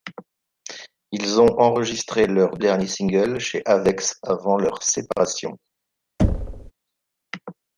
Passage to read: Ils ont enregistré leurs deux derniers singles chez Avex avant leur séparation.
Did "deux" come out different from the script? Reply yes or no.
yes